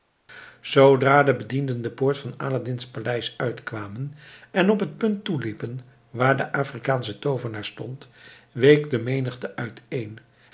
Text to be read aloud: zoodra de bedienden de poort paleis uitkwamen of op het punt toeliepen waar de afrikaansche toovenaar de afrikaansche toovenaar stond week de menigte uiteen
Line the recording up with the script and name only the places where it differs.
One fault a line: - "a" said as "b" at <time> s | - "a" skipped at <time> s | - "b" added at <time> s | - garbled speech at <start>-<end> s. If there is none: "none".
- "van aladdin's" added at 2.2 s
- "of" said as "en" at 4.5 s
- "de afrikaansche toovenaar" skipped at 7.7 s